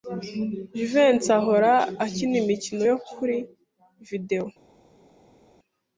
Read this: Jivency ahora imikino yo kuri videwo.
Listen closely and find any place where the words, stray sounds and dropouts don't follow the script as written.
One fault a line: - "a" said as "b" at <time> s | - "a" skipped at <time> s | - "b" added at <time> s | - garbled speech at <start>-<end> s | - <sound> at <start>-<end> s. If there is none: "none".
- "akina" added at 2.0 s